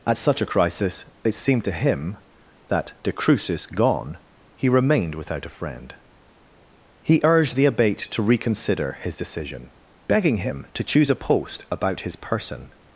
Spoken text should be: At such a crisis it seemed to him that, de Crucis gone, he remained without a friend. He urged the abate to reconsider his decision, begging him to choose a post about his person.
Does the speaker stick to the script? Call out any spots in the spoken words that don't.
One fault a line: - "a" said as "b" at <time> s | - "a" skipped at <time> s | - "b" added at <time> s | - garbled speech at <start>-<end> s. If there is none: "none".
none